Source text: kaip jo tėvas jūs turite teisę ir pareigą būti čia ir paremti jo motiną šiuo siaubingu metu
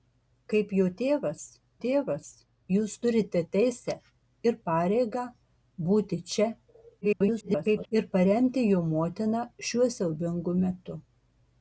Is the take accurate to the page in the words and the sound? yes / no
no